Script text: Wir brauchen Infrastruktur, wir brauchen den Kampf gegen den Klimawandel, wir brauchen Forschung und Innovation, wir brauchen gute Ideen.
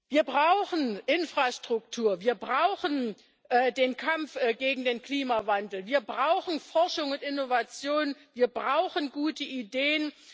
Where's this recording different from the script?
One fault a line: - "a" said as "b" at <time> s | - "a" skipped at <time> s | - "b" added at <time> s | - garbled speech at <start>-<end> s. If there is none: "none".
none